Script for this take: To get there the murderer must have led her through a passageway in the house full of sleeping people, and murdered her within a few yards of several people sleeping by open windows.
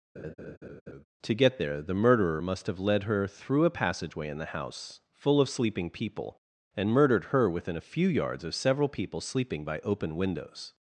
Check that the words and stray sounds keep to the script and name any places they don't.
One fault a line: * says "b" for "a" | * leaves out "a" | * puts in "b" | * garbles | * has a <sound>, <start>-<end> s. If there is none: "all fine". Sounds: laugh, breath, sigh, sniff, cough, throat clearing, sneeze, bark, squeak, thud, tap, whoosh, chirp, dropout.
* has a laugh, 0.2-1.0 s